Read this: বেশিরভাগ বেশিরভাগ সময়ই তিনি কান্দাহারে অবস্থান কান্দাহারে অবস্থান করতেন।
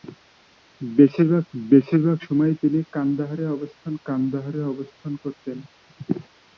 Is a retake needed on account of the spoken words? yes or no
no